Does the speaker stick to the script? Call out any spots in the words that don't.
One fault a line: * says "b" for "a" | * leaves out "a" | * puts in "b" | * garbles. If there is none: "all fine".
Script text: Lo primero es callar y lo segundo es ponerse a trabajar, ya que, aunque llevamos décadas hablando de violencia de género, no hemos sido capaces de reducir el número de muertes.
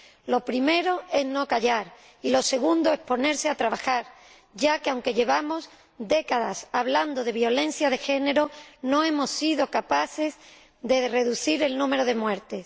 * puts in "no"